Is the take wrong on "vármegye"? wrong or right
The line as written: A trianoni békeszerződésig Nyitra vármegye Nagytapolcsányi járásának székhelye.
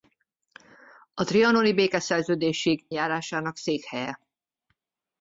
wrong